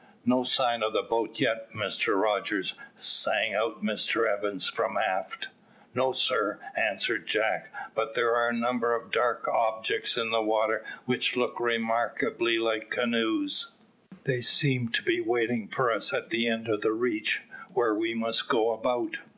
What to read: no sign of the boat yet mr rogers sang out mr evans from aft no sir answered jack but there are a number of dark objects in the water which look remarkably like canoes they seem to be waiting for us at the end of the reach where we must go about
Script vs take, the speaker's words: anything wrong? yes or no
no